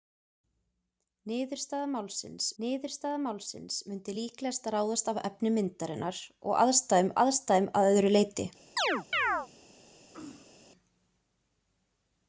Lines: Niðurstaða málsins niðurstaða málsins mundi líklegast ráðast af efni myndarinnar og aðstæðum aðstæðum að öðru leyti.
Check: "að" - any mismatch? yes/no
no